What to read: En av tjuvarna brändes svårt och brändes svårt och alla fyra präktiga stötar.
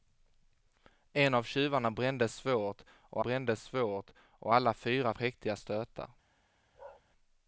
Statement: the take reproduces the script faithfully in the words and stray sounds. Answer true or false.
false